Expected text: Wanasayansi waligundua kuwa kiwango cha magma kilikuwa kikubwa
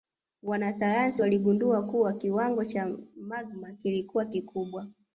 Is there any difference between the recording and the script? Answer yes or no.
no